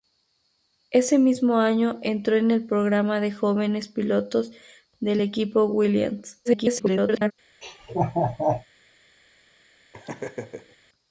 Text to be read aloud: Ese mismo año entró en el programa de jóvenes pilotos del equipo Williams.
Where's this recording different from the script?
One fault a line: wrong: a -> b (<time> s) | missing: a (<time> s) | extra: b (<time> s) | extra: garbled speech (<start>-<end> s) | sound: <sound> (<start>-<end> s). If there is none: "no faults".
extra: garbled speech (6.4-7.3 s)
sound: laugh (7.6-8.6 s)
sound: laugh (9.9-10.8 s)